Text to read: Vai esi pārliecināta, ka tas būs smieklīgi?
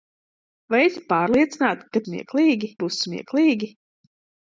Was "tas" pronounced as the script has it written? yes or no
no